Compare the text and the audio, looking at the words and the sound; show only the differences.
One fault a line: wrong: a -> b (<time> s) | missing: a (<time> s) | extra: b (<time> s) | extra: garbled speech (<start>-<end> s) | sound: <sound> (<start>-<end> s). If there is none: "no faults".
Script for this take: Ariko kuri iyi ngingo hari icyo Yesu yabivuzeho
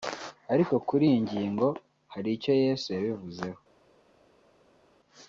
no faults